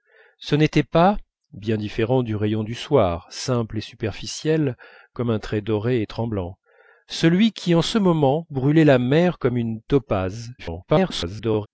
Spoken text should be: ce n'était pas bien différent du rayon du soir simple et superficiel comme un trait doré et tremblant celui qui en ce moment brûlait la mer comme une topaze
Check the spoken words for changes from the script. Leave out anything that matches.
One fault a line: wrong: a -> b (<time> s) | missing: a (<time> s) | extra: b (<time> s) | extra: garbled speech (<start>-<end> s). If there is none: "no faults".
extra: garbled speech (10.6-11.7 s)